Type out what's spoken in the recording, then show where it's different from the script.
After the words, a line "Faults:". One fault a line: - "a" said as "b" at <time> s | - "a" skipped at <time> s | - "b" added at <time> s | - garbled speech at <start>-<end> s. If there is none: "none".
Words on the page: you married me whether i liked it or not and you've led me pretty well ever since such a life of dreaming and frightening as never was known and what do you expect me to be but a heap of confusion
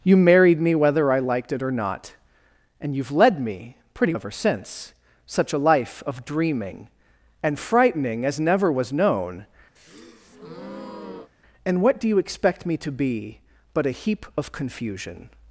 you married me whether i liked it or not and you've led me pretty ever since such a life of dreaming and frightening as never was known and what do you expect me to be but a heap of confusion
Faults:
- "well" skipped at 4.1 s